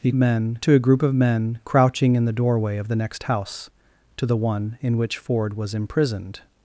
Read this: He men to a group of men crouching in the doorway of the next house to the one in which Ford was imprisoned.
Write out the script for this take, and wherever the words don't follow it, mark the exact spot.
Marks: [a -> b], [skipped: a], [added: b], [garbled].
He men to a group of men crouching in the doorway of the next house to the one in which Ford was imprisoned.